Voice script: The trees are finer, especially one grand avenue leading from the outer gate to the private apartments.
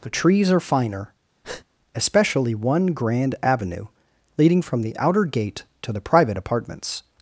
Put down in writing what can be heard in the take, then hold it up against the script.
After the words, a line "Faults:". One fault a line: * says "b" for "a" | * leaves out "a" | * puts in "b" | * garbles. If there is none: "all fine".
The trees are finer, especially one grand avenue leading from the outer gate to the private apartments.
Faults:
all fine